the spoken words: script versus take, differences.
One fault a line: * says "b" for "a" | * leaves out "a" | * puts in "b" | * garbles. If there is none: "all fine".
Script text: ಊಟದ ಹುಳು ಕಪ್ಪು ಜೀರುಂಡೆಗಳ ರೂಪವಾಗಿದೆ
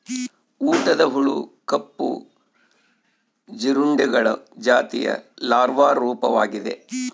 * puts in "ಜಾತಿಯ ಲಾರ್ವಾ"